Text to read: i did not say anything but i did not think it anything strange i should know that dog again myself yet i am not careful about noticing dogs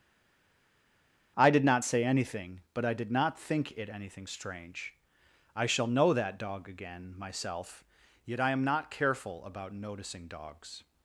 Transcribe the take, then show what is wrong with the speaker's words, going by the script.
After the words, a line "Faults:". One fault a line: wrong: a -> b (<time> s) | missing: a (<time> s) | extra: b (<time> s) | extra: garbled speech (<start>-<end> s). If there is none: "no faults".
i did not say anything but i did not think it anything strange i shall know that dog again myself yet i am not careful about noticing dogs
Faults:
wrong: should -> shall (5.7 s)